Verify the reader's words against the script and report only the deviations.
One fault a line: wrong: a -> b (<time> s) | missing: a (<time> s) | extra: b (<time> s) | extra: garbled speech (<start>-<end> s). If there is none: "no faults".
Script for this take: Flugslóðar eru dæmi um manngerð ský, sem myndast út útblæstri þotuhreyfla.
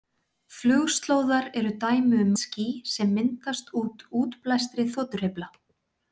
missing: manngerð (2.3 s)